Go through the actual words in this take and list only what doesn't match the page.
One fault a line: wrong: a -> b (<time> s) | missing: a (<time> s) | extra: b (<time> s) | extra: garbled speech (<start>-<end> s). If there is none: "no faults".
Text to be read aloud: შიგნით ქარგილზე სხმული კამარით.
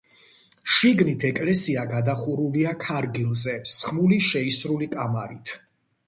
extra: ეკლესია გადახურულია (1.3 s)
extra: შეისრული (4.3 s)